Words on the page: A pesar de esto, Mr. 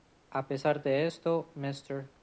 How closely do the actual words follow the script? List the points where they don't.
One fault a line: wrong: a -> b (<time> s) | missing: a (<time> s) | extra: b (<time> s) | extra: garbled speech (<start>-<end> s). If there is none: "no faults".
no faults